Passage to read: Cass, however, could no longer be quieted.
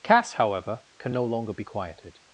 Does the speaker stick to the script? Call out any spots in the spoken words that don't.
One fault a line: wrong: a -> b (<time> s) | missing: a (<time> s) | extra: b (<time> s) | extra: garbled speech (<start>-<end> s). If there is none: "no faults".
wrong: could -> can (1.0 s)